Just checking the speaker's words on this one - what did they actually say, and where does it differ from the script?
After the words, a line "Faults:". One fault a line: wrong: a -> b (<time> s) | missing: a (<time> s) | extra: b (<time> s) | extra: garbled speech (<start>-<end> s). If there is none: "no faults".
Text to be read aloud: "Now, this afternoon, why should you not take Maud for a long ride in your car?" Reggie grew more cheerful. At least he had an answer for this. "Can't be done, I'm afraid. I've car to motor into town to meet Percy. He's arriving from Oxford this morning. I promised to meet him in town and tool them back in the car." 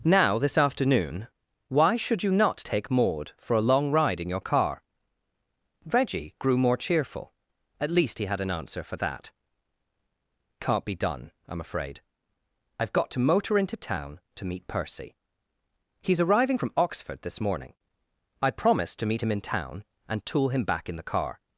"Now, this afternoon, why should you not take Maud for a long ride in your car?" Reggie grew more cheerful. At least he had an answer for that. "Can't be done, I'm afraid. I've got to motor into town to meet Percy. He's arriving from Oxford this morning. I promised to meet him in town and tool him back in the car."
Faults:
wrong: this -> that (9.0 s)
wrong: car -> got (12.9 s)
wrong: them -> him (20.5 s)